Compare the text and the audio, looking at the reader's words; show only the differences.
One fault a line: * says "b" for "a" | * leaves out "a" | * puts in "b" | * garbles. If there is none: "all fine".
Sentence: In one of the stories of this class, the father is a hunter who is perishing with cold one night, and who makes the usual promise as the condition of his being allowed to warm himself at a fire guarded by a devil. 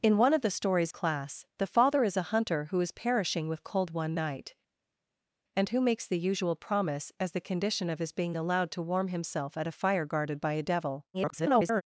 * leaves out "of this"
* garbles